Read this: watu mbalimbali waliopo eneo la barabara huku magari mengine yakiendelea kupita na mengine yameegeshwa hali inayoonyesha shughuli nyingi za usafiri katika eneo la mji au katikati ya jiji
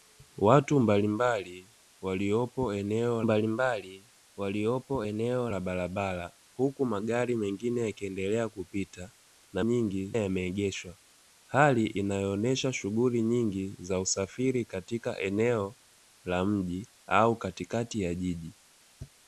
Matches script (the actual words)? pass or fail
fail